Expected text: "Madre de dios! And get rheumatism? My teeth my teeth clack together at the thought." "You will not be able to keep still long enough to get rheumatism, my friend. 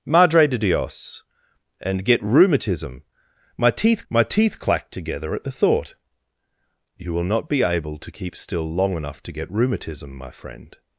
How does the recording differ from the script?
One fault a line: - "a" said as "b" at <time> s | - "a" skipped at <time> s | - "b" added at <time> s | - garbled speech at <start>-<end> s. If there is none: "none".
none